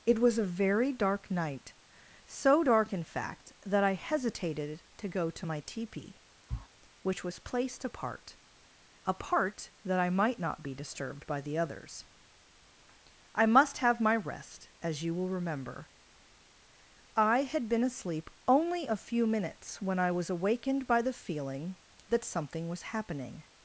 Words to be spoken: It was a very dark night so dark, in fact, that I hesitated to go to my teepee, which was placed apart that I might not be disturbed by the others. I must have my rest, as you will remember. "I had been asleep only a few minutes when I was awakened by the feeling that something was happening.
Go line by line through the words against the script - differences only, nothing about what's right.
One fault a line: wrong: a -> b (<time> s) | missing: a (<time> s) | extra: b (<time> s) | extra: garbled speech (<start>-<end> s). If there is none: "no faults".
extra: apart (9.1 s)